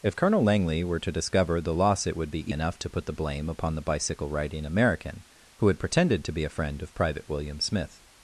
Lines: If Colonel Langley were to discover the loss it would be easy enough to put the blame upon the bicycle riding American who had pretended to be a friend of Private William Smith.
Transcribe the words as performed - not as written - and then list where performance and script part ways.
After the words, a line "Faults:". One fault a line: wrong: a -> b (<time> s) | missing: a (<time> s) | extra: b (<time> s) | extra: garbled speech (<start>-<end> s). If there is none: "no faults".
If Colonel Langley were to discover the loss it would be enough to put the blame upon the bicycle riding American who had pretended to be a friend of Private William Smith.
Faults:
missing: easy (2.5 s)